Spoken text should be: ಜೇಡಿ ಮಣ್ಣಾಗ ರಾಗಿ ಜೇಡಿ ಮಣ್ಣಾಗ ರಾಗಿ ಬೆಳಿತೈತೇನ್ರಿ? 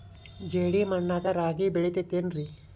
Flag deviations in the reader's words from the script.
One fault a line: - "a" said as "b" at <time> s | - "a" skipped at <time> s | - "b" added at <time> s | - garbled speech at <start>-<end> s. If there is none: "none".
- "ಜೇಡಿ ಮಣ್ಣಾಗ ರಾಗಿ" skipped at 1.7 s